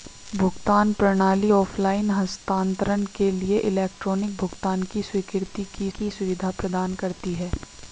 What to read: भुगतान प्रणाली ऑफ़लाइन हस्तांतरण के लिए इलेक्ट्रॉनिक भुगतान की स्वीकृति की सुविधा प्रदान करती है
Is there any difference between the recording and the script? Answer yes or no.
yes